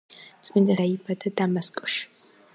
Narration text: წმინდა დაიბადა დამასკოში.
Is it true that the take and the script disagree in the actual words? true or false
false